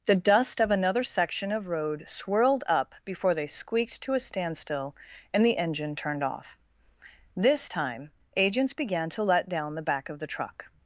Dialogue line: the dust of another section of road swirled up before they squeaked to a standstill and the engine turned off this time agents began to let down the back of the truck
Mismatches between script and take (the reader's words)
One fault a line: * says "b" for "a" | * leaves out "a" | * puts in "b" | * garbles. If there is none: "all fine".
all fine